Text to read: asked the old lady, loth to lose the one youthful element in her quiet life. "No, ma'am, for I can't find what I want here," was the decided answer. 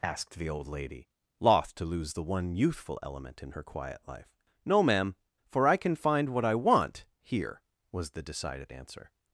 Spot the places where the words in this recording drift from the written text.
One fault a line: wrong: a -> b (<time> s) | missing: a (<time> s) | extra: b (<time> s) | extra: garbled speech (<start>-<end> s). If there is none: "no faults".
wrong: can't -> can (5.8 s)